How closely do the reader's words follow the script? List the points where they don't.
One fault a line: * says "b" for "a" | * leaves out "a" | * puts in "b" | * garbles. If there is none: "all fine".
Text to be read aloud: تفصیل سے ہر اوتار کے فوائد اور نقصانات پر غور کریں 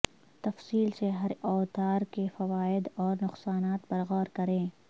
all fine